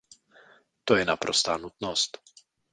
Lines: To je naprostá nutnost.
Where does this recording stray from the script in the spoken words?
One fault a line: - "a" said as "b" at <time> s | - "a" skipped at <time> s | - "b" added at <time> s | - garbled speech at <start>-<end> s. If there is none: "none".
none